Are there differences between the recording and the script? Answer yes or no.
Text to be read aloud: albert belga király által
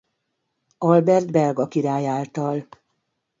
no